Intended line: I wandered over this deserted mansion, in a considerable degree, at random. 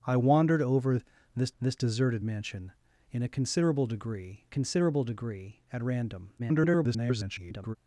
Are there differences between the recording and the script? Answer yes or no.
yes